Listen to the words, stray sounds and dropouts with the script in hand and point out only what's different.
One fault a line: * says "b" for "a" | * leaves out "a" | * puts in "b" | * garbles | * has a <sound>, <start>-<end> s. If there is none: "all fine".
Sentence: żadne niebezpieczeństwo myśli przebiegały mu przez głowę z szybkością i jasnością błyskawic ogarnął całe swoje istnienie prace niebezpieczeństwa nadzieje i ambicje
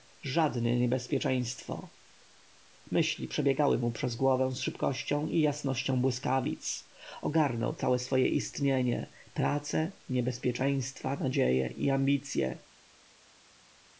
all fine